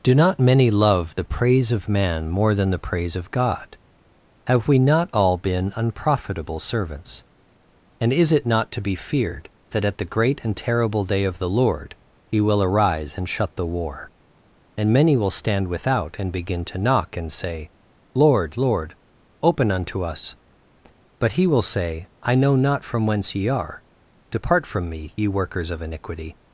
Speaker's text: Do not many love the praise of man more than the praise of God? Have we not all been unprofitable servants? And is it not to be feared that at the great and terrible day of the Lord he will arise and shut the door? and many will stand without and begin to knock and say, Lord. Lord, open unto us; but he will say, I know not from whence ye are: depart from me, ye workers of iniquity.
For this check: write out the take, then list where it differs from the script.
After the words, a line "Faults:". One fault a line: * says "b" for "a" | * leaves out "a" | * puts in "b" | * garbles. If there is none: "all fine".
Do not many love the praise of man more than the praise of God? Have we not all been unprofitable servants? And is it not to be feared that at the great and terrible day of the Lord he will arise and shut the war? and many will stand without and begin to knock and say, Lord. Lord, open unto us; but he will say, I know not from whence ye are: depart from me, ye workers of iniquity.
Faults:
* says "war" for "door"